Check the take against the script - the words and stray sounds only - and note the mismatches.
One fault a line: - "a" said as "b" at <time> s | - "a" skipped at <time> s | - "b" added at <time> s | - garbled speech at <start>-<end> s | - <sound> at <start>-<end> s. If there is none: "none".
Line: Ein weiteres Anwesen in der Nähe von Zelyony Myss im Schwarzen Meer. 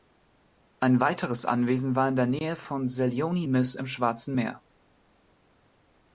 - "war" added at 1.9 s